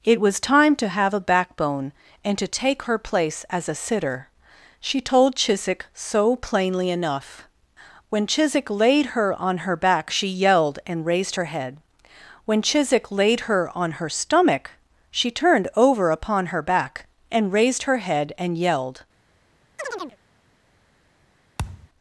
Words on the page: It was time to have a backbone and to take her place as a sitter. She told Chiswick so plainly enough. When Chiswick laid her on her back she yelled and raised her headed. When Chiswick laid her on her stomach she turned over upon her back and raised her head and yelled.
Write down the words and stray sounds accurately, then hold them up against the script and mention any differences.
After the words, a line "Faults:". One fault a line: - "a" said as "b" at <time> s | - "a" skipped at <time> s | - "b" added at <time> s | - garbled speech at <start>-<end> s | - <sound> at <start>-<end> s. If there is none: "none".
It was time to have a backbone and to take her place as a sitter. She told Chiswick so plainly enough. When Chiswick laid her on her back she yelled and raised her head. When Chiswick laid her on her stomach she turned over upon her back and raised her head and yelled.
Faults:
- "headed" said as "head" at 11.5 s
- chirp at 19.8-20.2 s
- thud at 21.6-21.9 s